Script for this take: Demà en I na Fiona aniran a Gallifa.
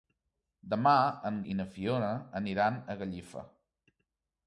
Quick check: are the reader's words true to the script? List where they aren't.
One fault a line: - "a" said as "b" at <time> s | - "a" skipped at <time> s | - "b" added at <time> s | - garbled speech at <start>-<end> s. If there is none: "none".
none